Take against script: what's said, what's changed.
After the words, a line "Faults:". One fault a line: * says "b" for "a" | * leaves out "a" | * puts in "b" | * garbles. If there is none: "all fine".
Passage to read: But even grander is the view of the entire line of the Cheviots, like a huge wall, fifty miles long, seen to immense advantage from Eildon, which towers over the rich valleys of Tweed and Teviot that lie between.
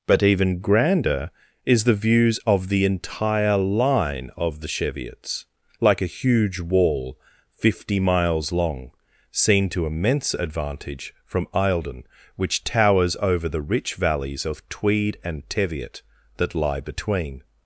But even grander is the views of the entire line of the Cheviots, like a huge wall, fifty miles long, seen to immense advantage from Eildon, which towers over the rich valleys of Tweed and Teviot that lie between.
Faults:
* says "views" for "view"